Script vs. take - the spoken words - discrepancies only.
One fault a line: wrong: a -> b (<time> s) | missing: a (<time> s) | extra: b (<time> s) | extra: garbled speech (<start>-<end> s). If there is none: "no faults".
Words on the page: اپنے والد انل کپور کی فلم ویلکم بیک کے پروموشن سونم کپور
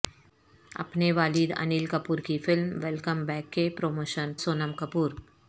no faults